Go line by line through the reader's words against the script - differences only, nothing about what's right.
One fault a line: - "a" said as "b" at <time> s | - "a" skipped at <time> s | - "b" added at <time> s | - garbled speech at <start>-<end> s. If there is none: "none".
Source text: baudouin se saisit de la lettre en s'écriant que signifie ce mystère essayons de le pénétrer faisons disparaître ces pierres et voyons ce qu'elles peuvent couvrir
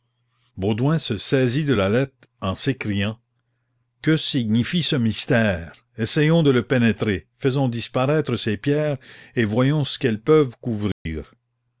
none